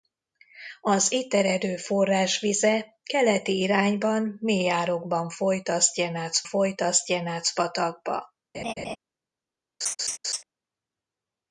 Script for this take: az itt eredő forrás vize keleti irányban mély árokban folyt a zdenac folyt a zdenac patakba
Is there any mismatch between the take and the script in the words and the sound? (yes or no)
yes